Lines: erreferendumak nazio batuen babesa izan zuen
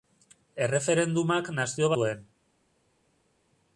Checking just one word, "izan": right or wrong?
wrong